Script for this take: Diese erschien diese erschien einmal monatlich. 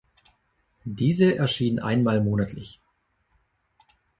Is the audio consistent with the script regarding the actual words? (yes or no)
no